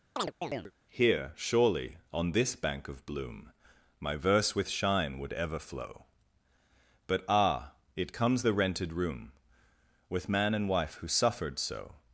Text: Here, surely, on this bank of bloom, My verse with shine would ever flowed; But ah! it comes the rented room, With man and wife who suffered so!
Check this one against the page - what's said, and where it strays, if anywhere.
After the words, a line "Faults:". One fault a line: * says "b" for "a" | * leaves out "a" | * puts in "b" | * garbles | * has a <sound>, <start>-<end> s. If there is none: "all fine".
Here, surely, on this bank of bloom, My verse with shine would ever flow; But ah! it comes the rented room, With man and wife who suffered so!
Faults:
* has a chirp, 0.2-0.7 s
* says "flow" for "flowed"